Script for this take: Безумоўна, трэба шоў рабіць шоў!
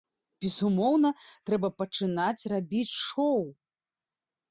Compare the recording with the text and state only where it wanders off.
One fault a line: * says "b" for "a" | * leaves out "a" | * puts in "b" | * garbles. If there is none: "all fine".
* says "пачынаць" for "шоў"